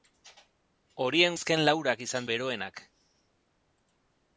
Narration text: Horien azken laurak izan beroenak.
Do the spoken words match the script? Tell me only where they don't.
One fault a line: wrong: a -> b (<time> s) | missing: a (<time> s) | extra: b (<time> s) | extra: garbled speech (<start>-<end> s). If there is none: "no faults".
no faults